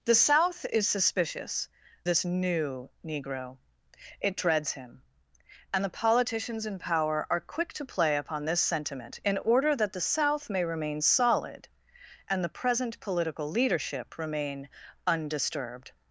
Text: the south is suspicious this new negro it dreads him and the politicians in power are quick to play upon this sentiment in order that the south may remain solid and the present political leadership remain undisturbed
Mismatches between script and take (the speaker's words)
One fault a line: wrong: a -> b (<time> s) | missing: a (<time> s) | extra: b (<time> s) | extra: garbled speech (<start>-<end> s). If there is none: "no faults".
no faults